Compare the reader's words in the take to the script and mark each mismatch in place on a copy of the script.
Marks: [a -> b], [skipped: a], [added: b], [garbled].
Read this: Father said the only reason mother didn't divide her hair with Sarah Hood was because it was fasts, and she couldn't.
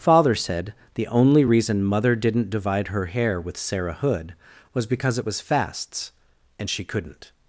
Father said the only reason mother didn't divide her hair with Sarah Hood was because it was fasts, and she couldn't.